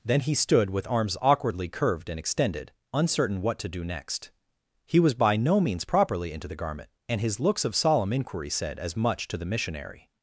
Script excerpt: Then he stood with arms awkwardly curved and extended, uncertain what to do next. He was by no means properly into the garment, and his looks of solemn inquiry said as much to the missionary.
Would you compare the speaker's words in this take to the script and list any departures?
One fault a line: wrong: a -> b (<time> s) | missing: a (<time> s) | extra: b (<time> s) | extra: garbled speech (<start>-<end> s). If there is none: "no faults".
no faults